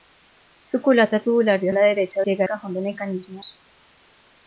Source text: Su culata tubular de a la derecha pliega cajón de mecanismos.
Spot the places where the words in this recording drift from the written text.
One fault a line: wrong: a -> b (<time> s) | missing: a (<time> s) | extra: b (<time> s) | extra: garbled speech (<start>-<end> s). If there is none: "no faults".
no faults